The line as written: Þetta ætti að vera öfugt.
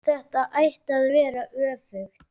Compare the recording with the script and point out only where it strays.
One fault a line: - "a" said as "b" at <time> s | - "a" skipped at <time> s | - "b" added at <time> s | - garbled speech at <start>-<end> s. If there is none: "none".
none